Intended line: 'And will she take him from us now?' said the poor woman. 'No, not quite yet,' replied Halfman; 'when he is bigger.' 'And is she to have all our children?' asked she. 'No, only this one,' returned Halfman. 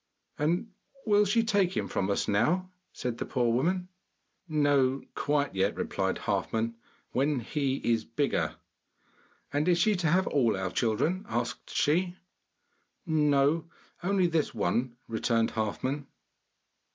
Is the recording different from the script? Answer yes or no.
yes